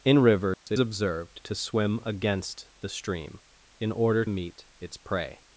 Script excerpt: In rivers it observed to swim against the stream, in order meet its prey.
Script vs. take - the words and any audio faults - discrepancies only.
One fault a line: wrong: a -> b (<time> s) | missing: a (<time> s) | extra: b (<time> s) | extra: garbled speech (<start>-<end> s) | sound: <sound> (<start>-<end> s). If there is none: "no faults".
sound: dropout (0.5-0.7 s)